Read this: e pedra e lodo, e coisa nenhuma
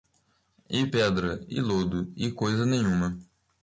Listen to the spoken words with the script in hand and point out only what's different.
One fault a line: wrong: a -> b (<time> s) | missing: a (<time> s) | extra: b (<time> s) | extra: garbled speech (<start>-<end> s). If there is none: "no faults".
no faults